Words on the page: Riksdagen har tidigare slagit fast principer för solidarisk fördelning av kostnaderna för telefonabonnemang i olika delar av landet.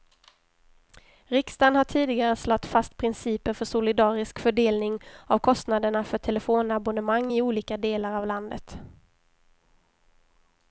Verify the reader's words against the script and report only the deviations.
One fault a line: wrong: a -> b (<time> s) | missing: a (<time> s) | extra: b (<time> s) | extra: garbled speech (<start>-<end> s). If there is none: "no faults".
no faults